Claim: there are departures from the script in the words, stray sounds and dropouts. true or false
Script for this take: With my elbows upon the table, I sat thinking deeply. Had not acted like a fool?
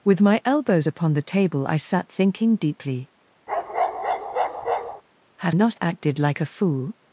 true